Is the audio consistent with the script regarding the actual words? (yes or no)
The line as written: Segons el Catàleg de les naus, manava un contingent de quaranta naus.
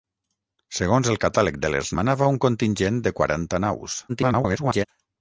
no